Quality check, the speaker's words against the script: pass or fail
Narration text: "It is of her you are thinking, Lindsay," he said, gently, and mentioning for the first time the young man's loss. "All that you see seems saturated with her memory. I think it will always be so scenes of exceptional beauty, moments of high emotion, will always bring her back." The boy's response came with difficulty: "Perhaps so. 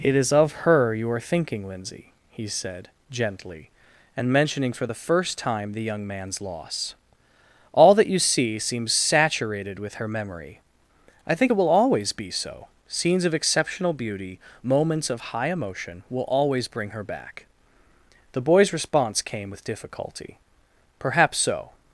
pass